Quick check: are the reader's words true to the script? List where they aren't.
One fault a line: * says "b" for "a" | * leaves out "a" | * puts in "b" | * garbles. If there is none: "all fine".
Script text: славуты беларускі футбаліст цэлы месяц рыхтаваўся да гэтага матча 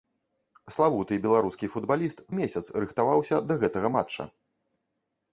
* leaves out "цэлы"